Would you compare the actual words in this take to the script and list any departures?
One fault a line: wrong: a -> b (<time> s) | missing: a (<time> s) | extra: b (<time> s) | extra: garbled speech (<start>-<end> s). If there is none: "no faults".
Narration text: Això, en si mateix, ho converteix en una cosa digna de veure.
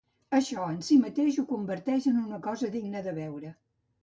no faults